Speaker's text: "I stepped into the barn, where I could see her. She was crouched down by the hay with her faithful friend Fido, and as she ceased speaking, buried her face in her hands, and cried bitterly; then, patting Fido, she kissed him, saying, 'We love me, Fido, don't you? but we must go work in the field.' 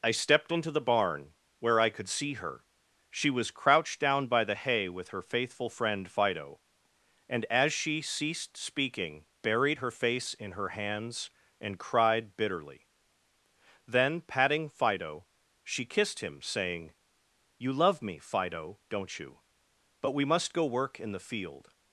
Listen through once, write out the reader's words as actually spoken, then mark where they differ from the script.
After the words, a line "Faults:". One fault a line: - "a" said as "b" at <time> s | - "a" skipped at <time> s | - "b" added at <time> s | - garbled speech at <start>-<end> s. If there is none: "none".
"I stepped into the barn, where I could see her. She was crouched down by the hay with her faithful friend Fido, and as she ceased speaking, buried her face in her hands, and cried bitterly; then, patting Fido, she kissed him, saying, 'You love me, Fido, don't you? but we must go work in the field.'
Faults:
- "We" said as "You" at 17.6 s